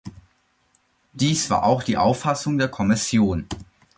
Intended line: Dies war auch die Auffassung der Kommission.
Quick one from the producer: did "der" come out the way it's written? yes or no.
yes